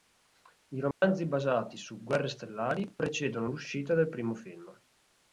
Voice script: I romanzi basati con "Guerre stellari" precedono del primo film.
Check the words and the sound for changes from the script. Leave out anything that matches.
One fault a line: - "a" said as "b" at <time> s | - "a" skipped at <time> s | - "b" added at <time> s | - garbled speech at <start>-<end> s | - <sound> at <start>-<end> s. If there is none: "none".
- dropout at 0.9-1.0 s
- "con" said as "su" at 1.8 s
- "l'uscita" added at 3.5 s